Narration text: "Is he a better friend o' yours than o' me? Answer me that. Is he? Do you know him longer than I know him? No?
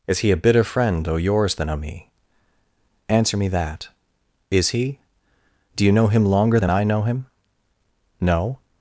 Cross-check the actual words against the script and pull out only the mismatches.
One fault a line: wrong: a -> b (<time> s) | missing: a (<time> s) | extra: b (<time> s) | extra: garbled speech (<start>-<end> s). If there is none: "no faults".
wrong: better -> bitter (0.4 s)